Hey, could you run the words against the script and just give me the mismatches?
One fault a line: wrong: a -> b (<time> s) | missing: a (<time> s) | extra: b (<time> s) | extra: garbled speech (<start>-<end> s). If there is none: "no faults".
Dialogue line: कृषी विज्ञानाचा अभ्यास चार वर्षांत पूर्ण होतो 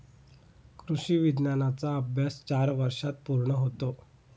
no faults